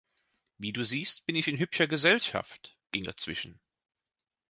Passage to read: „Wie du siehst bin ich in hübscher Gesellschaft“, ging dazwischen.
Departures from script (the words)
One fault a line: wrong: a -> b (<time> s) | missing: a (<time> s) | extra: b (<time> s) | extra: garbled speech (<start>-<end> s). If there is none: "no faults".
no faults